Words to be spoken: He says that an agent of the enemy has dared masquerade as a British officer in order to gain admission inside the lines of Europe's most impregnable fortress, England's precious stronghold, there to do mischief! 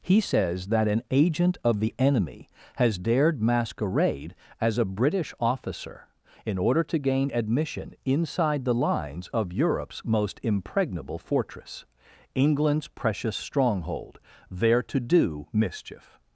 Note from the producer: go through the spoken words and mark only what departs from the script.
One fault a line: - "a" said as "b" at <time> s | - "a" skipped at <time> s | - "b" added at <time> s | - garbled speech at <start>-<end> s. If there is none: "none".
none